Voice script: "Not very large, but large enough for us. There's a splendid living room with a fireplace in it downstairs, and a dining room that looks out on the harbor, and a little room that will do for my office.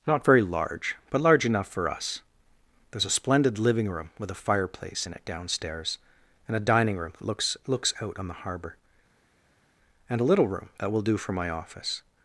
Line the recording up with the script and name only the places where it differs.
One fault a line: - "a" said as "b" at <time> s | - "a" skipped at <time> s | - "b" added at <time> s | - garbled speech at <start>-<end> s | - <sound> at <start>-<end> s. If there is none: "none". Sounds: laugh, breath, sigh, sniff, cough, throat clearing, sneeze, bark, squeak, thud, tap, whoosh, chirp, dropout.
- "looks" added at 7.7 s